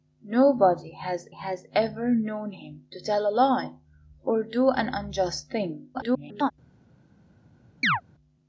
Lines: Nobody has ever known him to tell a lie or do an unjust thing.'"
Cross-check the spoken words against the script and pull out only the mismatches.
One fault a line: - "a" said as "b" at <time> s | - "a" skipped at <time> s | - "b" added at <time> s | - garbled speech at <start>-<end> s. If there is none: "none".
- "has" added at 1.3 s
- garbled speech at 5.9-6.5 s